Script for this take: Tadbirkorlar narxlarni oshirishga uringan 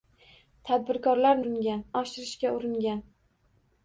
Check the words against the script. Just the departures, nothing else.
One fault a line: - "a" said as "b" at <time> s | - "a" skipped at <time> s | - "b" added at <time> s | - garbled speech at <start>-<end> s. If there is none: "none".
- "narxlarni" said as "uringan" at 1.4 s